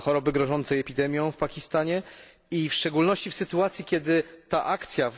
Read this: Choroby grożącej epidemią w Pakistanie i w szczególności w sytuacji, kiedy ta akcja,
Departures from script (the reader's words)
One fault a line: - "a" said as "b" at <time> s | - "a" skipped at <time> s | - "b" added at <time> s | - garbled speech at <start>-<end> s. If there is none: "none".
none